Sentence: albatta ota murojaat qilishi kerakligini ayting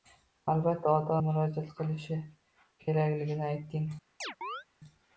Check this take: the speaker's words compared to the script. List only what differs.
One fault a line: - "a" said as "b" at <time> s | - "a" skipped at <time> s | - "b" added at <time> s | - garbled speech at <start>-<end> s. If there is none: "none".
none